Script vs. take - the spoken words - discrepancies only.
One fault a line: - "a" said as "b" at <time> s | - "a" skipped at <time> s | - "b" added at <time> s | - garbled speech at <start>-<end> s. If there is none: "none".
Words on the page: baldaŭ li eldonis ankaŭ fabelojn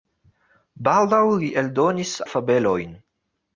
- "ankaŭ" skipped at 2.1 s